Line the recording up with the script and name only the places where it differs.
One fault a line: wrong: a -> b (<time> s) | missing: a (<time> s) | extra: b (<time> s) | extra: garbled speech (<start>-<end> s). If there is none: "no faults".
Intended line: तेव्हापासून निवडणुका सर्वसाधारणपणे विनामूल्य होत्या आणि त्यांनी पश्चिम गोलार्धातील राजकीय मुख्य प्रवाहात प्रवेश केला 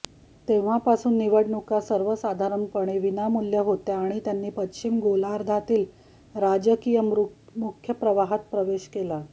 no faults